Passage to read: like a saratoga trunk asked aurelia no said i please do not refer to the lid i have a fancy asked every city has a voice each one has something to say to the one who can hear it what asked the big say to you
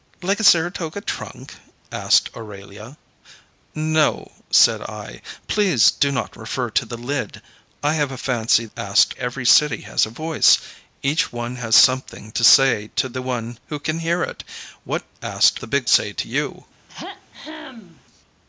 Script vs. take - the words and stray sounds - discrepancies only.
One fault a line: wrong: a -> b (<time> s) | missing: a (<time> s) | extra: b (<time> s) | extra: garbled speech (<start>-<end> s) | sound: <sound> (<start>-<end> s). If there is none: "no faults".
sound: throat clearing (16.9-18.0 s)